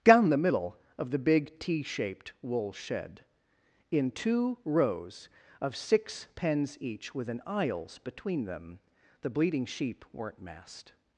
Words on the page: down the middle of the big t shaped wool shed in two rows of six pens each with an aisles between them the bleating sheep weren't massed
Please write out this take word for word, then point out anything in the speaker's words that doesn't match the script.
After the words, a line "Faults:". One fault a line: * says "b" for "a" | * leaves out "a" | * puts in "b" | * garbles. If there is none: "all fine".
down the middle of the big t shaped wool shed in two rows of six pens each with an aisles between them the bleating sheep weren't massed
Faults:
all fine